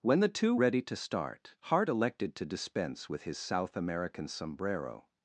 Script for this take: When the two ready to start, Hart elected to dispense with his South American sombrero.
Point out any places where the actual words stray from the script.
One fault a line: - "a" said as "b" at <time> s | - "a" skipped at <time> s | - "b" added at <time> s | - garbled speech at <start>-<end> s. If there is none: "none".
none